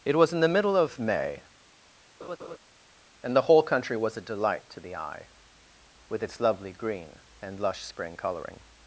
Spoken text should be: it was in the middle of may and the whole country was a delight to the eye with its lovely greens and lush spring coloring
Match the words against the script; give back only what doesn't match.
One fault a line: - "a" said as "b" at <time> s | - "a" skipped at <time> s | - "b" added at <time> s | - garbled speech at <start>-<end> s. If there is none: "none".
- "greens" said as "green" at 6.7 s